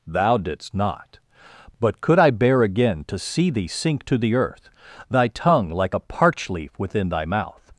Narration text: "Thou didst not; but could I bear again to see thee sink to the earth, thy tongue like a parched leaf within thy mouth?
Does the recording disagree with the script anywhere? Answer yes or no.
yes